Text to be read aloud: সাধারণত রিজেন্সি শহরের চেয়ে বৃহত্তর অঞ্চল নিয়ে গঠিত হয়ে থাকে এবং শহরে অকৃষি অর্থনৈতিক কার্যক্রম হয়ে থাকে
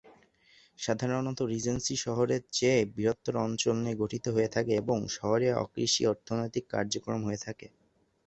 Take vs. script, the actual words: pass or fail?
pass